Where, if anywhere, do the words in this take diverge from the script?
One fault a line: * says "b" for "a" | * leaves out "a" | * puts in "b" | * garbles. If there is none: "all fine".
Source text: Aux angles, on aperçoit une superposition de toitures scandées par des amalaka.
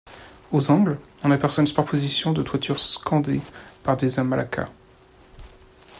all fine